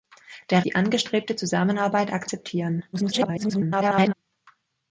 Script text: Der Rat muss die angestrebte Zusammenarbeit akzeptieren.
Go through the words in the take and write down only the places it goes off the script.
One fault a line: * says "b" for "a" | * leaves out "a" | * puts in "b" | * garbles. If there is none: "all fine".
* leaves out "Rat muss"
* garbles